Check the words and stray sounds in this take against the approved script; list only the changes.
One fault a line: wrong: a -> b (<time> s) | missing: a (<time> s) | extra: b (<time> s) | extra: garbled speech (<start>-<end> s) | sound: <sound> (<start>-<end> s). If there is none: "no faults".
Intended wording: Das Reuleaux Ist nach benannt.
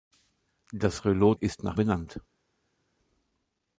no faults